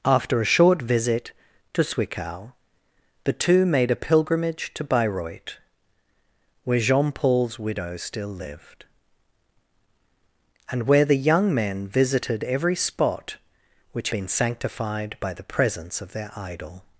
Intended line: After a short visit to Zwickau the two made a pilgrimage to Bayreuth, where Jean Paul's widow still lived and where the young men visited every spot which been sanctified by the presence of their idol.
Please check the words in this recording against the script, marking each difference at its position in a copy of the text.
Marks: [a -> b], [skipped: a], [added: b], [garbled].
After a short visit to Zwickau the two made a pilgrimage to Bayreuth, where Jean Paul's widow still lived and where the young men visited every spot which been sanctified by the presence of their idol.